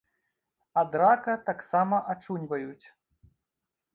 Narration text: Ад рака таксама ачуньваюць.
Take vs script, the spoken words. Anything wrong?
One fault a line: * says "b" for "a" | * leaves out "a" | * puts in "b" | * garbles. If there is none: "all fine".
all fine